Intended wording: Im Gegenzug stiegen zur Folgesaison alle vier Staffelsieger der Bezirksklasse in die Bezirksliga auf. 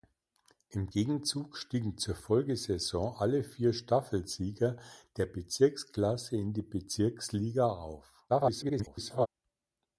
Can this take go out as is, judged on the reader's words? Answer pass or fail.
fail